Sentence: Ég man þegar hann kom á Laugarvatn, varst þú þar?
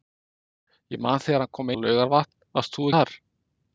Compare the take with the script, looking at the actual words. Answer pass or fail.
pass